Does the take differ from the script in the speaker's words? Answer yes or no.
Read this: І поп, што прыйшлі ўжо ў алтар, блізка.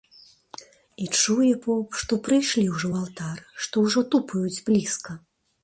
yes